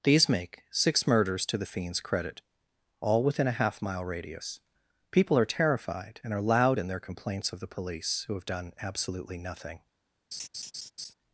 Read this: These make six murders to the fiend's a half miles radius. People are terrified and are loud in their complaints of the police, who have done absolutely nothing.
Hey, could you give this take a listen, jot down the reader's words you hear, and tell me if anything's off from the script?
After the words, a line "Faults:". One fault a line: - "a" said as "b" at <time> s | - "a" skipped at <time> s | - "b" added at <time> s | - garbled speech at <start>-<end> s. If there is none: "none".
These make six murders to the fiend's credit; all within a half mile radius. People are terrified and are loud in their complaints of the police, who have done absolutely nothing.
Faults:
- "credit all within" added at 2.0 s
- "miles" said as "mile" at 3.8 s